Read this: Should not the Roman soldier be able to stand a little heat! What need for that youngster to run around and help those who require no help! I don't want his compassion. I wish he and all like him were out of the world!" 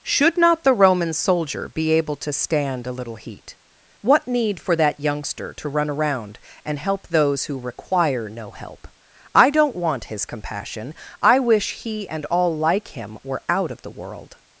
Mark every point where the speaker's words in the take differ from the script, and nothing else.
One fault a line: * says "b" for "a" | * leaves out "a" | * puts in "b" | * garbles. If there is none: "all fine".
all fine